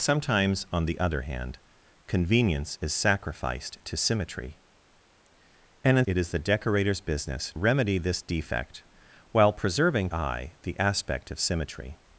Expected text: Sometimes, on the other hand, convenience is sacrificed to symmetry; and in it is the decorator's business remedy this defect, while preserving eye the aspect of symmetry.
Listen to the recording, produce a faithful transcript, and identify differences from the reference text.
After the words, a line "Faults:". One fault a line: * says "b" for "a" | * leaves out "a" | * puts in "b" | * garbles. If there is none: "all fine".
Sometimes, on the other hand, convenience is sacrificed to symmetry; and in it is the decorator's business remedy this defect, while preserving eye the aspect of symmetry.
Faults:
all fine